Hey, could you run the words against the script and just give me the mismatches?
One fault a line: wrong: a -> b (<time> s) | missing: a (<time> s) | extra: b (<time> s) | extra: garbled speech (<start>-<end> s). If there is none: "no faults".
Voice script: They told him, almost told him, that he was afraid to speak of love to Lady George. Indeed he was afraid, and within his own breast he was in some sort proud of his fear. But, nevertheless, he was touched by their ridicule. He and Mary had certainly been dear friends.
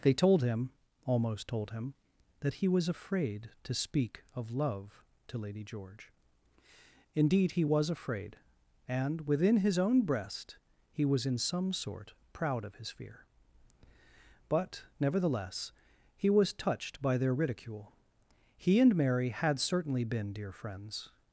no faults